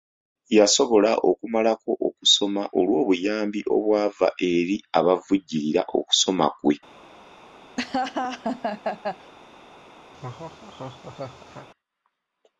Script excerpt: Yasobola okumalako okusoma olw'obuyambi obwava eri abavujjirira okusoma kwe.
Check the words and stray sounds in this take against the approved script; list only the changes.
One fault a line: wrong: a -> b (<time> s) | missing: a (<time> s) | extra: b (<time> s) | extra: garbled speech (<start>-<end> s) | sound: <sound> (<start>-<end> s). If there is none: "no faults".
sound: laugh (7.8-9.3 s)
sound: laugh (10.1-11.7 s)